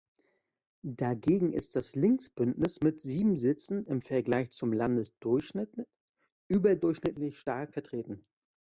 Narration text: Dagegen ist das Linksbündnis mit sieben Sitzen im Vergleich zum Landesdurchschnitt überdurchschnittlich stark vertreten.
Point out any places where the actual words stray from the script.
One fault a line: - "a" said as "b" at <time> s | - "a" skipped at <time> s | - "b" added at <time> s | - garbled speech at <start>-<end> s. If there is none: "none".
none